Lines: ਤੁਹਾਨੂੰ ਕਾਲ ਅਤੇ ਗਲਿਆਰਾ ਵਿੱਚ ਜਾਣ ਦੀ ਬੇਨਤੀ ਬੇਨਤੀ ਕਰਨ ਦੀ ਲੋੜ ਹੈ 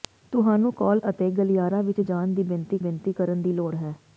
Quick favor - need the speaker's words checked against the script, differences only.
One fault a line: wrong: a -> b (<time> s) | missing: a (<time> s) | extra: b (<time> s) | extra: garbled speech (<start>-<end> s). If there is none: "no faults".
no faults